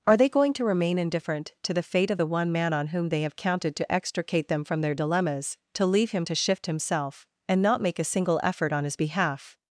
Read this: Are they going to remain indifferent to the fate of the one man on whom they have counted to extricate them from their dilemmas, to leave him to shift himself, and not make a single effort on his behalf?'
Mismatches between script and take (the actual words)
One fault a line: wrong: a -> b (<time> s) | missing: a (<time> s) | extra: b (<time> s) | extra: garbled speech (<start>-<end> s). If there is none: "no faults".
no faults